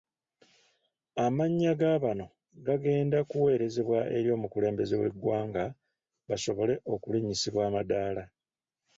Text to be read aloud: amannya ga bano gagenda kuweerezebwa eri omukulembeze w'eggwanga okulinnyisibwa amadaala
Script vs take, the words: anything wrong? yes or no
yes